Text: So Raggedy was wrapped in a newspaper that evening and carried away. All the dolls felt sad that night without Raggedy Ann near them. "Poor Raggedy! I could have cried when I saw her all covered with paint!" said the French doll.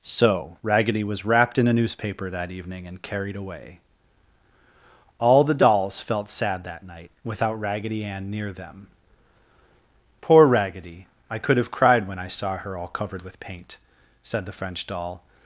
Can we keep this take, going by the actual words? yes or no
yes